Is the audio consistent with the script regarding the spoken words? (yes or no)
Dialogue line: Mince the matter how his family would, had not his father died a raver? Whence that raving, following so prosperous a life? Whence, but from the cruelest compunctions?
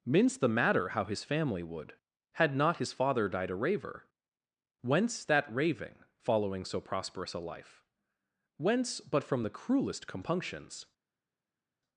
yes